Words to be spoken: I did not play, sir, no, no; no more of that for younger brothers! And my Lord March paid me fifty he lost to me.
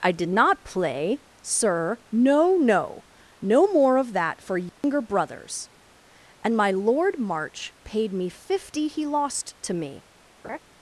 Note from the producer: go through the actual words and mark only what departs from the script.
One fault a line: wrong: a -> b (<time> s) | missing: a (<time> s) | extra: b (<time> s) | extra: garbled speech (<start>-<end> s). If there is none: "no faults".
no faults